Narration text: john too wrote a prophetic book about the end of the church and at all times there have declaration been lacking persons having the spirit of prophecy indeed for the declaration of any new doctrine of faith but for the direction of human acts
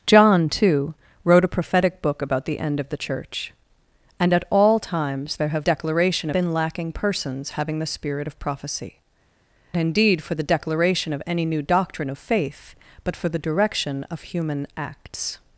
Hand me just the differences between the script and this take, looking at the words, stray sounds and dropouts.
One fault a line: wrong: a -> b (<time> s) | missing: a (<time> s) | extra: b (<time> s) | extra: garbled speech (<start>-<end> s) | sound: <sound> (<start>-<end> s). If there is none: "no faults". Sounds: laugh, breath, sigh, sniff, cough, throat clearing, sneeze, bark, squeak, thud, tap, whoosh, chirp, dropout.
no faults